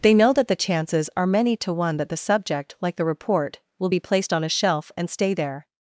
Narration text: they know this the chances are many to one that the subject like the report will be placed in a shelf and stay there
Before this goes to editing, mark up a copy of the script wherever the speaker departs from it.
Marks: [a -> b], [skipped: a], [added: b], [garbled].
they know [this -> that] the chances are many to one that the subject like the report will be placed [in -> on] a shelf and stay there